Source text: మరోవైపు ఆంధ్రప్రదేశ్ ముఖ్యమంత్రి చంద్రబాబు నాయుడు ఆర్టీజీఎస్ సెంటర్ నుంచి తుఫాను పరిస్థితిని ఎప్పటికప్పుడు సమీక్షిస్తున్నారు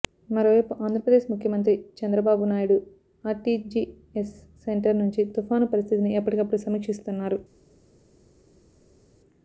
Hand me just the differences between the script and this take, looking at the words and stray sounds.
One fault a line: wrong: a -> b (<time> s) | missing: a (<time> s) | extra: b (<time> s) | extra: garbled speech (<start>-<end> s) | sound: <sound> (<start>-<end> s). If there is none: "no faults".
no faults